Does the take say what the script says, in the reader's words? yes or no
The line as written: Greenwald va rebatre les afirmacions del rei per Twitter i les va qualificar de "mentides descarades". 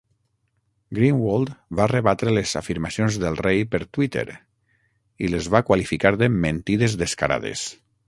yes